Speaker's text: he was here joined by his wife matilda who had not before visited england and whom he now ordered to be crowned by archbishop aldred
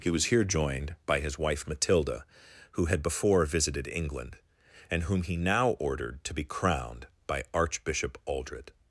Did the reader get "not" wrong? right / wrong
wrong